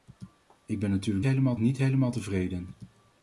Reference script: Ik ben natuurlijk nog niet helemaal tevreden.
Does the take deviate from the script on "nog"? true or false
true